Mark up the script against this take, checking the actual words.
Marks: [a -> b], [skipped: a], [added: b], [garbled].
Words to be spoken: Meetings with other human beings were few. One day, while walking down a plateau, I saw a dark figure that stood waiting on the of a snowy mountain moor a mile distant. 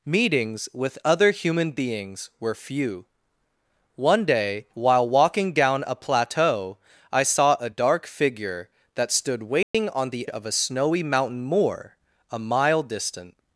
Meetings with other human beings were few. One day, while walking down a plateau, I saw a dark figure that stood waiting on the of a snowy mountain moor a mile distant.